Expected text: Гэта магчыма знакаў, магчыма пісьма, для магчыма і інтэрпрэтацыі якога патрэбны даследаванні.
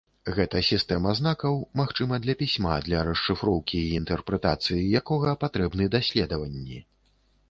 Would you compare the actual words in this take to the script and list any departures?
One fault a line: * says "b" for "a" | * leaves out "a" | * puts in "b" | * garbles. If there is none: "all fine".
* says "сістэма" for "магчыма"
* puts in "для"
* says "расшыфроўкі" for "магчыма"